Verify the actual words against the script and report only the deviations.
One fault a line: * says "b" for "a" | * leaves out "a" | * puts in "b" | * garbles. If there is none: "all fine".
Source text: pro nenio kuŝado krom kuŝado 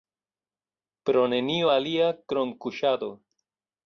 * says "alia" for "kuŝado"